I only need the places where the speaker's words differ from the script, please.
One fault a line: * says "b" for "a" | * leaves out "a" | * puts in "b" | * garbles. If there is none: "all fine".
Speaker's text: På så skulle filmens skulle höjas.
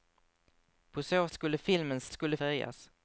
all fine